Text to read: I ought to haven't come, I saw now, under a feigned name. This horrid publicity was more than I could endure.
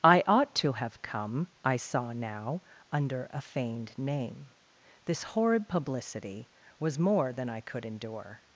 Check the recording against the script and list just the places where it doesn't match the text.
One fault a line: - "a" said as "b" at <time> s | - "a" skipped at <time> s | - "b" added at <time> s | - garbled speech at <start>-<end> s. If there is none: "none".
- "haven't" said as "have" at 0.7 s